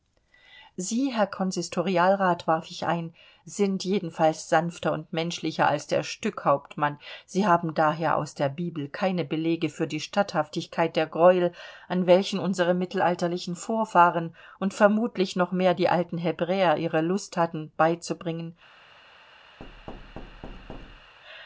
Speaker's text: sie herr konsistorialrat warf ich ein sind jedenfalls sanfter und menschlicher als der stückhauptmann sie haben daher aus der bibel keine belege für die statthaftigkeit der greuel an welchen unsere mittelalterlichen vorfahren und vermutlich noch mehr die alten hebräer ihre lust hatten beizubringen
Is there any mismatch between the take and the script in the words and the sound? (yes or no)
yes